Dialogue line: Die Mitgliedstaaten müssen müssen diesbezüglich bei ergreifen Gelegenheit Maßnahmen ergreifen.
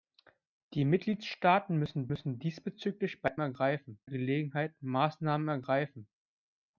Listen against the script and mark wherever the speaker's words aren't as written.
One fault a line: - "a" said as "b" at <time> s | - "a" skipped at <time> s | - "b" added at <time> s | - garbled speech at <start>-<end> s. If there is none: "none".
none